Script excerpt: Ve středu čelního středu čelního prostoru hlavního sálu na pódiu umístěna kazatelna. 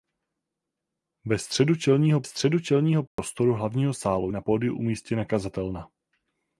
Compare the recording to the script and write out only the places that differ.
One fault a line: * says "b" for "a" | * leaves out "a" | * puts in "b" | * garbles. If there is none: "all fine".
all fine